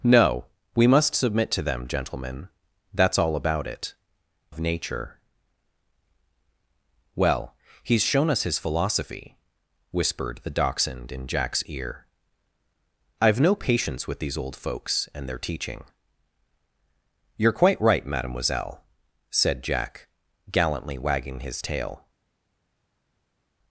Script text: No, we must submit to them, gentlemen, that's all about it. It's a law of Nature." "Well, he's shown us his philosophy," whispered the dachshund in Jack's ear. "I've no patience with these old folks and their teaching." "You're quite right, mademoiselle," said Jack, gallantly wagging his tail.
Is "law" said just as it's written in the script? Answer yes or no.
no